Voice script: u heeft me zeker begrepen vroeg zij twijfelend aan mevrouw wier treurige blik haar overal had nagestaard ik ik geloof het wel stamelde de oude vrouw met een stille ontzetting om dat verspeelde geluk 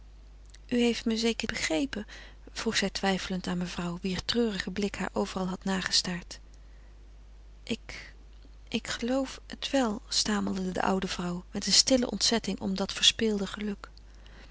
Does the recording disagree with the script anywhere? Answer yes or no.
no